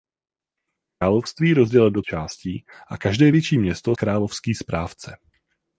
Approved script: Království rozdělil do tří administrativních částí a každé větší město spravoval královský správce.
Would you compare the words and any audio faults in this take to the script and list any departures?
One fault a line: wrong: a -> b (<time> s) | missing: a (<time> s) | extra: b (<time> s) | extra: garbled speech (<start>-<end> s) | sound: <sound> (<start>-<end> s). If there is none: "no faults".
missing: tří administrativních (2.0 s)
missing: spravoval (3.9 s)